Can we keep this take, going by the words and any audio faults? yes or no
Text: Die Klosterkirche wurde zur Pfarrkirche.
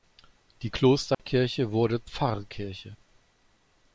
no